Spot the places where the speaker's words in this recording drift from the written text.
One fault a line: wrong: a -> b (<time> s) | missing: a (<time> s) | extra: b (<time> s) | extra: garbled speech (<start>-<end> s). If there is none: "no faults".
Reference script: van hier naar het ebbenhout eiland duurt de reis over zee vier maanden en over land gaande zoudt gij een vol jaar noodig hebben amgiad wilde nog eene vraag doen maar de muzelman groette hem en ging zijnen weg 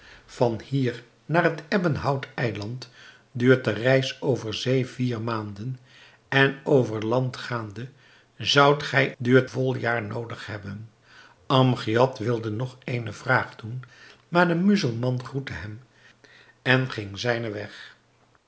wrong: een -> duurt (9.2 s)